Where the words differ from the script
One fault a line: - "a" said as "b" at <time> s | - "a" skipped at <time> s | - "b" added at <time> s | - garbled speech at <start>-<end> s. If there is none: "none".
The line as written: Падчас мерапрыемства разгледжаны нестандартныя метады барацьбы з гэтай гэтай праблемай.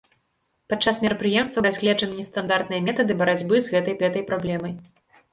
none